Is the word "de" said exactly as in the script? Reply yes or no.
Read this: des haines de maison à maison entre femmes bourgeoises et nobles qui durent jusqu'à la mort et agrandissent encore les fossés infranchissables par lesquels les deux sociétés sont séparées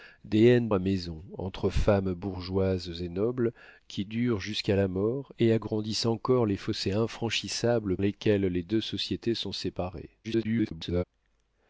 no